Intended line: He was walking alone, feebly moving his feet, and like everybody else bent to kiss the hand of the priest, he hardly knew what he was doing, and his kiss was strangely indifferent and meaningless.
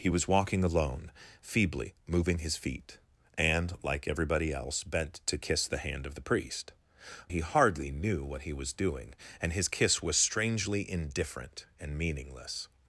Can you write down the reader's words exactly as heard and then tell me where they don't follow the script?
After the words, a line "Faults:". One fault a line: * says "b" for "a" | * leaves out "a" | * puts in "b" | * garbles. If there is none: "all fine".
He was walking alone, feebly moving his feet, and like everybody else bent to kiss the hand of the priest, he hardly knew what he was doing, and his kiss was strangely indifferent and meaningless.
Faults:
all fine